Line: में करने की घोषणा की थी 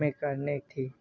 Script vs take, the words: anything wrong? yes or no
yes